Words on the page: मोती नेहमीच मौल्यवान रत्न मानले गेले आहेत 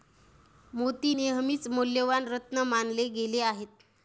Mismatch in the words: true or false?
false